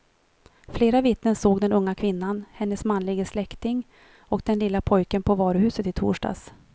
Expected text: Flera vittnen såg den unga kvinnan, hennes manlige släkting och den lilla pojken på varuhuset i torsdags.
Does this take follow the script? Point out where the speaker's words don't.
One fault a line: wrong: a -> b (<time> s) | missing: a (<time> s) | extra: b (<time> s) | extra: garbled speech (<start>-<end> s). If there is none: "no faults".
no faults